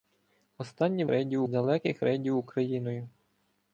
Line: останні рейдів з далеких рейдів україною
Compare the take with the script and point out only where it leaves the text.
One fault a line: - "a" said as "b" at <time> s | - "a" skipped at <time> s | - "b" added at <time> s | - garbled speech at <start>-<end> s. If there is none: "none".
none